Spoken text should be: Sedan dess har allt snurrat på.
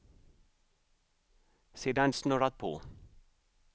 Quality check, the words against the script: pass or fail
fail